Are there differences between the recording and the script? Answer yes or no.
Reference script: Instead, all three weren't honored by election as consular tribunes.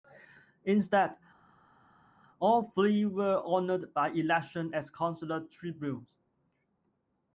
yes